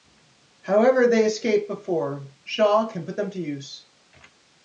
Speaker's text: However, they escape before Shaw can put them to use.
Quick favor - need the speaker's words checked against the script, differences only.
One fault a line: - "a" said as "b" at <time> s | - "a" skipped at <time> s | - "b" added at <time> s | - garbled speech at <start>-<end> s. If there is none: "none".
none